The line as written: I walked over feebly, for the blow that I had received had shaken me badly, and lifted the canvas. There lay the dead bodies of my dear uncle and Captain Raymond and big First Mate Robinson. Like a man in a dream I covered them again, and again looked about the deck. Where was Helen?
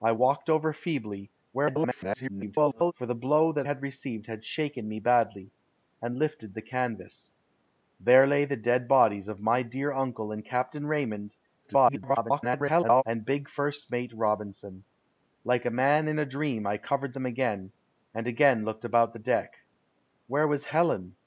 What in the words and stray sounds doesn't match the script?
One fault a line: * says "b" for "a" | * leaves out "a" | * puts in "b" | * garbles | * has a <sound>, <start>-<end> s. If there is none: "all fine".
* garbles
* leaves out "I"
* garbles